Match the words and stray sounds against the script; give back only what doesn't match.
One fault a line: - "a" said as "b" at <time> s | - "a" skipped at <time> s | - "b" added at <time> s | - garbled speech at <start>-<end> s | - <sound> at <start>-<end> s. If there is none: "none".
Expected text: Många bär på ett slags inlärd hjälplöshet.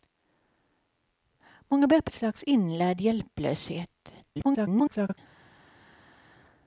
- "ett" skipped at 2.1 s
- garbled speech at 4.2-5.2 s